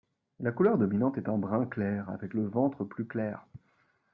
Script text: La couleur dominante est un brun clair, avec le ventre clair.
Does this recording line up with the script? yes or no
no